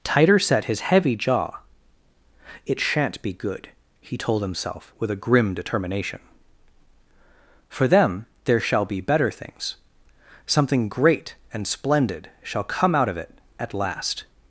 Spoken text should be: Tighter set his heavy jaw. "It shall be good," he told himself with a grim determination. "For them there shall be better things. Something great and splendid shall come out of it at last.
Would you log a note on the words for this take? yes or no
yes